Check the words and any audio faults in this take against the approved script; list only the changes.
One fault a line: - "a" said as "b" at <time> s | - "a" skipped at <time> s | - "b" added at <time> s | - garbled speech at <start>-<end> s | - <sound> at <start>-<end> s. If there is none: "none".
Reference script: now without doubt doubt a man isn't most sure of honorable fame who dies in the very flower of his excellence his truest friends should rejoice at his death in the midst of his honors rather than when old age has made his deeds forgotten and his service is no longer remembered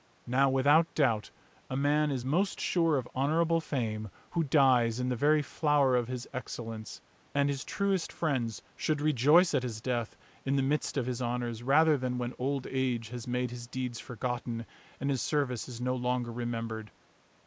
- "doubt" skipped at 1.3 s
- "isn't" said as "is" at 2.1 s
- "and" added at 7.3 s